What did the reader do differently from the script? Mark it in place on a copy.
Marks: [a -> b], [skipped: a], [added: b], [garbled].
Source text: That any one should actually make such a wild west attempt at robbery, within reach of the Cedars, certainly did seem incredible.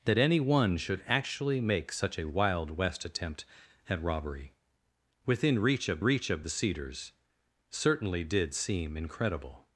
That any one should actually make such a wild west attempt at robbery, within reach of [added: reach of] the Cedars, certainly did seem incredible.